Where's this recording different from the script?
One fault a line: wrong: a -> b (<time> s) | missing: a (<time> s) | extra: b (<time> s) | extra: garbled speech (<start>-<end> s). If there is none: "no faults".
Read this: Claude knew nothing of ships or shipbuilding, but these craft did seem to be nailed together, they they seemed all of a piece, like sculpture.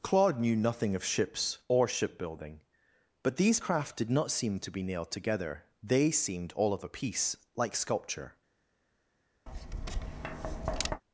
extra: not (4.1 s)
missing: they (6.1 s)